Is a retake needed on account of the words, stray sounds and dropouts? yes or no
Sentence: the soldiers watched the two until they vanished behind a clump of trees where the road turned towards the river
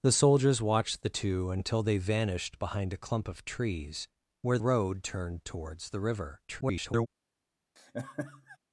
yes